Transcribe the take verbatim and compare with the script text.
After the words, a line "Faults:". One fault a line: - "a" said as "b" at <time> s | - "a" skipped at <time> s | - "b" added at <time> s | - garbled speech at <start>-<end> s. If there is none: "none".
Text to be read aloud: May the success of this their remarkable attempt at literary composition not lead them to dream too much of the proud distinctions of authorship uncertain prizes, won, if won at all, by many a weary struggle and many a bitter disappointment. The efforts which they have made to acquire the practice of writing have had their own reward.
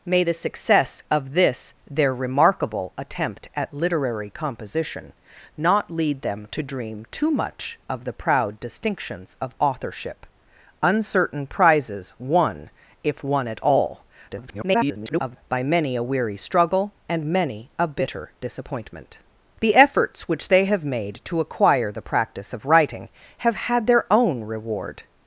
May the success of this their remarkable attempt at literary composition not lead them to dream too much of the proud distinctions of authorship uncertain prizes, won, if won at all, [garbled] by many a weary struggle and many a bitter disappointment. The efforts which they have made to acquire the practice of writing have had their own reward.
Faults:
- garbled speech at 14.3-15.4 s